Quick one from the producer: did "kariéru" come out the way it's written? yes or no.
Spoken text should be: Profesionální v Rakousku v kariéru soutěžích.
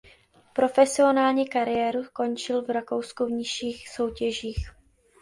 no